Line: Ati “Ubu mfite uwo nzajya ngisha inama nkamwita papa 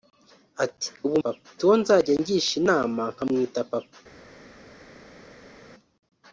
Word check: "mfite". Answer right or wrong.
wrong